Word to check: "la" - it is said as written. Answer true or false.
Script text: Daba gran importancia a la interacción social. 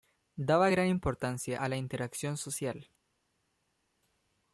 true